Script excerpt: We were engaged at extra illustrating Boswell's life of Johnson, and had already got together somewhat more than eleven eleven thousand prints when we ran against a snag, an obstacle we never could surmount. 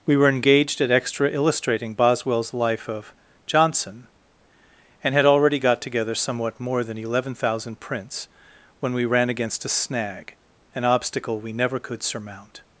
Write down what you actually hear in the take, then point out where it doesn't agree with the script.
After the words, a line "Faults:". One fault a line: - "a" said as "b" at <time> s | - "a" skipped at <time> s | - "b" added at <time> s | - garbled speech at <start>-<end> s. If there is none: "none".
We were engaged at extra illustrating Boswell's life of Johnson, and had already got together somewhat more than eleven thousand prints when we ran against a snag, an obstacle we never could surmount.
Faults:
- "eleven" skipped at 7.3 s